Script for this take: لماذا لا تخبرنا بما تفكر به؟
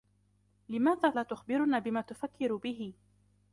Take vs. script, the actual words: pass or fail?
pass